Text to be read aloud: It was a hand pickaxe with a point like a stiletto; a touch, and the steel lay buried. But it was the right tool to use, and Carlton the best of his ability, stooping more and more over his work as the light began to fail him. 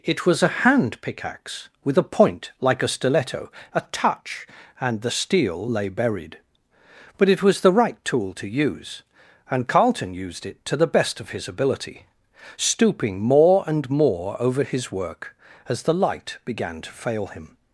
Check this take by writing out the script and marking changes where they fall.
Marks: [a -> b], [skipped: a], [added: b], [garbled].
It was a hand pickaxe with a point like a stiletto; a touch, and the steel lay buried. But it was the right tool to use, and Carlton [added: used it to] the best of his ability, stooping more and more over his work as the light began to fail him.